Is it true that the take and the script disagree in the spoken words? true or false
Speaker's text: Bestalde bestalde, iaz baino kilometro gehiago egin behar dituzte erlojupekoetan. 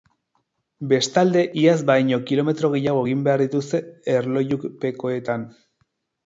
true